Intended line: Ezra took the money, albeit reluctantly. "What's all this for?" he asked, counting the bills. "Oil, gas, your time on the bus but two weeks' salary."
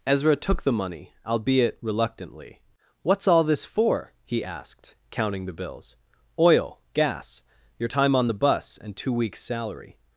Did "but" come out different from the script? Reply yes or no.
yes